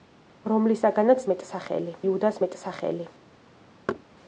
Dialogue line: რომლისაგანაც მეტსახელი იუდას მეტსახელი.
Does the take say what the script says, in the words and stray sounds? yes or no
no